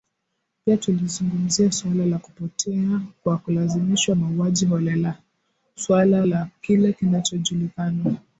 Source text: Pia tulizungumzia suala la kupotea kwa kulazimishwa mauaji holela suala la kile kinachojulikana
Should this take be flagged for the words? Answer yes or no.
no